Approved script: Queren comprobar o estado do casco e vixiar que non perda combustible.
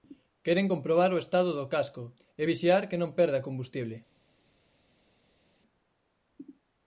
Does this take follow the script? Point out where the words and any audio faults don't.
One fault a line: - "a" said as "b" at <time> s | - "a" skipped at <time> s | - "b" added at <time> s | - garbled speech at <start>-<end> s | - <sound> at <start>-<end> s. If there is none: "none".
none